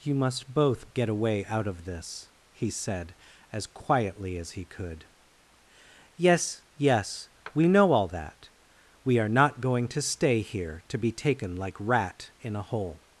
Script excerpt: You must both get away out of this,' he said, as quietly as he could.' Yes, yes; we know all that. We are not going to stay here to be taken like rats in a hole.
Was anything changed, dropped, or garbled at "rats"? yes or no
yes